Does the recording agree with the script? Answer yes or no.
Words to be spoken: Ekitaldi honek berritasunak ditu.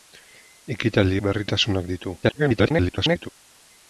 no